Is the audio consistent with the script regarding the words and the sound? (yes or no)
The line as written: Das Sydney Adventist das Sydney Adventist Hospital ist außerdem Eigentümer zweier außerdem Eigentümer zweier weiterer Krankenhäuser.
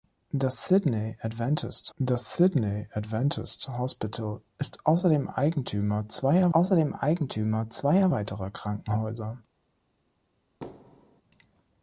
no